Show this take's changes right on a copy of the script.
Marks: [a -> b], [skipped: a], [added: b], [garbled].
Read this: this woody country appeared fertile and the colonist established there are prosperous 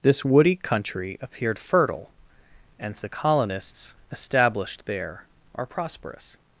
this woody country appeared fertile and the [colonist -> colonists] established there are prosperous